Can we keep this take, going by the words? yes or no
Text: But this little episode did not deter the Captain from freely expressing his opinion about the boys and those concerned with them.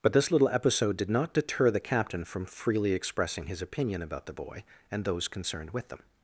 no